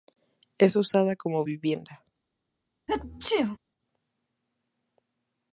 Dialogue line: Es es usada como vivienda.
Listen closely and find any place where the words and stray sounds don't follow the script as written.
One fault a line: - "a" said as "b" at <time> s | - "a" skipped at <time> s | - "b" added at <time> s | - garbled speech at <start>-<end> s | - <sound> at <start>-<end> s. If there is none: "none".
- "es" skipped at 0.8 s
- sneeze at 2.9-3.6 s